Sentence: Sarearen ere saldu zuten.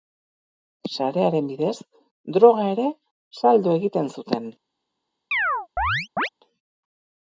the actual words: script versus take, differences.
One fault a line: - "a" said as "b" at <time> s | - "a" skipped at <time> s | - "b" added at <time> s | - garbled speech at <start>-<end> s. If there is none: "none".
- "bidez droga" added at 1.5 s
- "egiten" added at 3.8 s